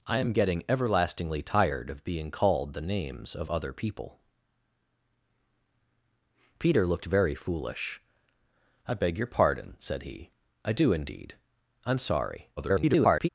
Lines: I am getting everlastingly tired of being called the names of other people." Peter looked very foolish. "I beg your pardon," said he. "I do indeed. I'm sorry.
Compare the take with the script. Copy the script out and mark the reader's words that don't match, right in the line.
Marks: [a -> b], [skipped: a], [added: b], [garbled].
I am getting everlastingly tired of being called the names of other people." Peter looked very foolish. "I beg your pardon," said he. "I do indeed. I'm sorry. [garbled]